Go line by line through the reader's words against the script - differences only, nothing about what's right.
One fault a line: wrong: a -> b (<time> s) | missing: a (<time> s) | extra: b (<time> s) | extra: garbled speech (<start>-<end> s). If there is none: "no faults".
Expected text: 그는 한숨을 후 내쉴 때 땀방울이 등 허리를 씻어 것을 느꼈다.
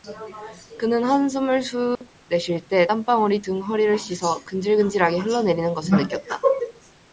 extra: 근질근질하게 흘러내리는 (4.4 s)